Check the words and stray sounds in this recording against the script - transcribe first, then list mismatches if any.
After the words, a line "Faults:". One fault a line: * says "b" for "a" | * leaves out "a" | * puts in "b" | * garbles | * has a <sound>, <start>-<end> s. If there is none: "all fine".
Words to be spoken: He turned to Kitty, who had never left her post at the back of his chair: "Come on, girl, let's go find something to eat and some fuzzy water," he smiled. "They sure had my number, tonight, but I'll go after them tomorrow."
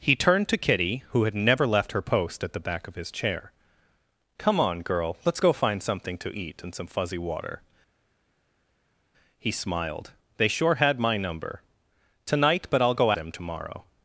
He turned to Kitty, who had never left her post at the back of his chair: "Come on, girl, let's go find something to eat and some fuzzy water," he smiled. "They sure had my number, tonight, but I'll go them tomorrow."
Faults:
* leaves out "after"